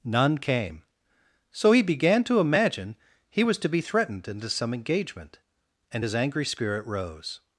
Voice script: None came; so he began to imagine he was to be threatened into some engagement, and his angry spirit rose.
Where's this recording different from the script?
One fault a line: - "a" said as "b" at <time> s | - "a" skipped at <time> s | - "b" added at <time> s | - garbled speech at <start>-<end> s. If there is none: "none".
none